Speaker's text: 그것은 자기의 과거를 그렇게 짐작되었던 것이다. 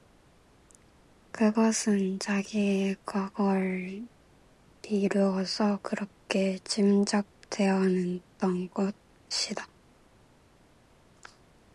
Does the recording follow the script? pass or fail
fail